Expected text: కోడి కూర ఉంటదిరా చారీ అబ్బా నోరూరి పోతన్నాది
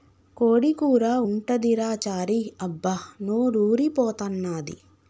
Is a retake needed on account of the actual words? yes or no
no